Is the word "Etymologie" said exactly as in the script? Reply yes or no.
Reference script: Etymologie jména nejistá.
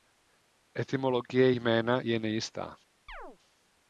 yes